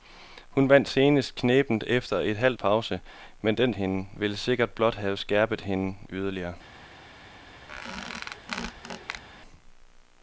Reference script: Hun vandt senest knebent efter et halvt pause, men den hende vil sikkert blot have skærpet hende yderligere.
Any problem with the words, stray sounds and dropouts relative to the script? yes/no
yes